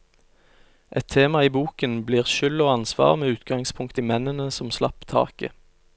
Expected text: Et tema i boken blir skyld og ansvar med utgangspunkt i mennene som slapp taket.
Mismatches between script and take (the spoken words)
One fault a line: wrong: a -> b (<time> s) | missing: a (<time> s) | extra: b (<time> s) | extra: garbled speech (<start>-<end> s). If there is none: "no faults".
no faults